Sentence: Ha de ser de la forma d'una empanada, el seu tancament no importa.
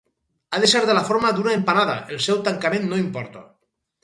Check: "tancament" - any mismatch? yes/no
no